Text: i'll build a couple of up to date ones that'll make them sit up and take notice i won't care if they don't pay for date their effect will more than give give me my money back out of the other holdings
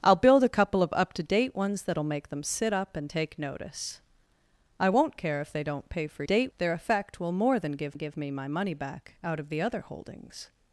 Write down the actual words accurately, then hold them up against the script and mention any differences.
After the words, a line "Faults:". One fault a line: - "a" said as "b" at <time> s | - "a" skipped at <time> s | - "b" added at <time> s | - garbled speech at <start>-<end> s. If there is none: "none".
i'll build a couple of up to date ones that'll make them sit up and take notice i won't care if they don't pay for date their effect will more than give give me my money back out of the other holdings
Faults:
none